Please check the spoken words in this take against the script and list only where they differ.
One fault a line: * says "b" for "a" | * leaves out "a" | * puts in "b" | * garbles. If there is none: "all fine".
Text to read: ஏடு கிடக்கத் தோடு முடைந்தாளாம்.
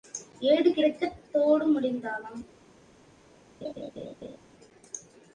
all fine